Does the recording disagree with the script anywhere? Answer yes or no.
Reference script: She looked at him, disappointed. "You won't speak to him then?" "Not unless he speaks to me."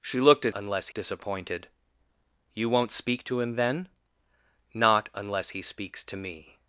yes